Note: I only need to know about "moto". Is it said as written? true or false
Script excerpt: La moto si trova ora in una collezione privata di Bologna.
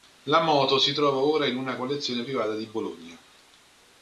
true